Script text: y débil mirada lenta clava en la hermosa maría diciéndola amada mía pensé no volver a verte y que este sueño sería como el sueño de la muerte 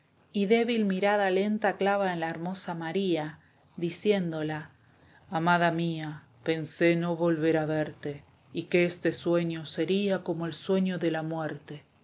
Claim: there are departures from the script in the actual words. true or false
false